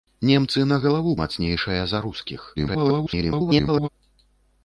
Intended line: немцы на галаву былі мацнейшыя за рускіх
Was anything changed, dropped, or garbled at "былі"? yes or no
yes